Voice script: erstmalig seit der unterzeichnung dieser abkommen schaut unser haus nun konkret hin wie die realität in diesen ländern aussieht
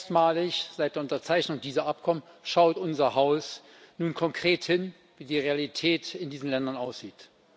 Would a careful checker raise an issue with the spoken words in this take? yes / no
no